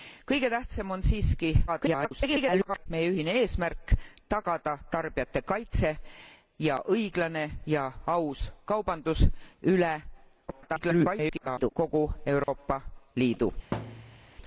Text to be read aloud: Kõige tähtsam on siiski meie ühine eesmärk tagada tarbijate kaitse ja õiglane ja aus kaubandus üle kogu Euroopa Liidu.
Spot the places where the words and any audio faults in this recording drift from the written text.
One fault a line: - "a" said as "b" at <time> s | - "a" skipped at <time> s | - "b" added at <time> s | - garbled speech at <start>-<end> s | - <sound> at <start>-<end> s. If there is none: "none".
- garbled speech at 1.7-2.9 s
- garbled speech at 10.5-11.7 s
- dropout at 12.4-12.5 s
- thud at 13.7-14.3 s